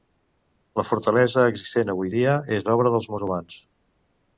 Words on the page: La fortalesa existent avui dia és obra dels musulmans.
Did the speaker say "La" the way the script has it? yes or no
yes